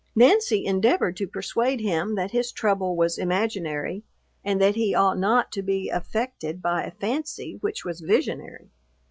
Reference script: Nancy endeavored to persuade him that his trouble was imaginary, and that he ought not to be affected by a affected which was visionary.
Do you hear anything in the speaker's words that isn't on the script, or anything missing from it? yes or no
yes